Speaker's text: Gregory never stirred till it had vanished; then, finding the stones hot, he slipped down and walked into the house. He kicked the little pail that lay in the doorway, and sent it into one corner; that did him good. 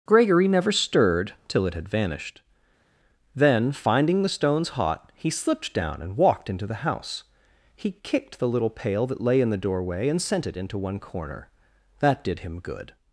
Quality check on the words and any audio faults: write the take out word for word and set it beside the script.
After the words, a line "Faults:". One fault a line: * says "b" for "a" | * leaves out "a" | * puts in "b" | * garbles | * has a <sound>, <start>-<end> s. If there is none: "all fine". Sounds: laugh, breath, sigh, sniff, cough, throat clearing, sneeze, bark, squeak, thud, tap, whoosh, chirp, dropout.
Gregory never stirred till it had vanished; then, finding the stones hot, he slipped down and walked into the house. He kicked the little pail that lay in the doorway, and sent it into one corner; that did him good.
Faults:
all fine